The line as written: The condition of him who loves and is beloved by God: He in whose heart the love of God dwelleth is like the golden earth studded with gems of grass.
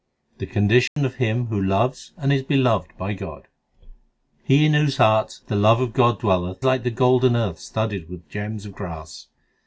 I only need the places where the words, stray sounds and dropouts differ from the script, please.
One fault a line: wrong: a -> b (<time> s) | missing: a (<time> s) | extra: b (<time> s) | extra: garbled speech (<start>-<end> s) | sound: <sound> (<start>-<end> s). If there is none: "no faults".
sound: dropout (0.9-1.0 s)
missing: is (6.7 s)